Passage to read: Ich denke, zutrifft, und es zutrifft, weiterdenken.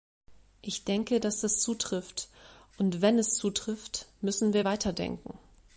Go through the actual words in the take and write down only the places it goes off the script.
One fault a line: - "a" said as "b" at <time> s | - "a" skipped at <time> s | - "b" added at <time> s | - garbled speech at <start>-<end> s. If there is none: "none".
- "dass das" added at 1.2 s
- "wenn" added at 3.0 s
- "müssen wir" added at 4.2 s